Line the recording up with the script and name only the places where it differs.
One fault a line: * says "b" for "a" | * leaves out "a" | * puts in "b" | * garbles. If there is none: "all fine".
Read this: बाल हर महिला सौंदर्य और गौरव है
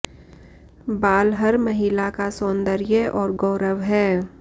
* puts in "का"